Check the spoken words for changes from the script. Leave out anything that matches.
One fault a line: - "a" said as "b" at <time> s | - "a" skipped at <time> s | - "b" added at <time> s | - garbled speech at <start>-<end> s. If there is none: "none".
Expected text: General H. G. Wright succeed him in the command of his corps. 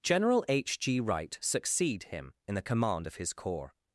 none